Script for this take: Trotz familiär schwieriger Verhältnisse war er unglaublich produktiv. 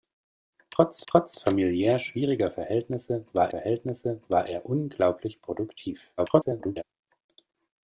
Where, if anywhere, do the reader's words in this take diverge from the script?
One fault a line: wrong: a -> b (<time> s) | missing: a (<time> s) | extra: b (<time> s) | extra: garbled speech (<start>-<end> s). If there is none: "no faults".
extra: trotz (1.1 s)
extra: Verhältnisse war (3.5 s)
extra: garbled speech (6.2-6.8 s)